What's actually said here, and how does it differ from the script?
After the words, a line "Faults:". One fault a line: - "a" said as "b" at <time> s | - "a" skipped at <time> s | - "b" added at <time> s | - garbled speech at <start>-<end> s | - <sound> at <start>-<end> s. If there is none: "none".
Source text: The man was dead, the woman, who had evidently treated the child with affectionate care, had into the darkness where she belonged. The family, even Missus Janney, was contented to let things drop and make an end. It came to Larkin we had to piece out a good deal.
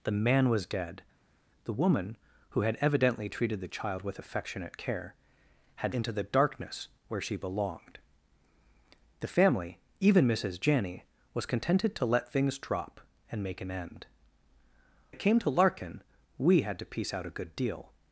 The man was dead, the woman, who had evidently treated the child with affectionate care, had into the darkness where she belonged. The family, even Missus Janney, was contented to let things drop and make an end. It came to Larkin we had to piece out a good deal.
Faults:
none